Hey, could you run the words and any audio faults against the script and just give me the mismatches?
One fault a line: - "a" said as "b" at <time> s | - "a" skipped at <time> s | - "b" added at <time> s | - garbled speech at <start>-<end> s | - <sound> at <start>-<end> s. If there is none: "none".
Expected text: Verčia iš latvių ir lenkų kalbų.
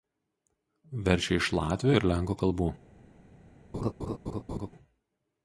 - laugh at 3.7-4.7 s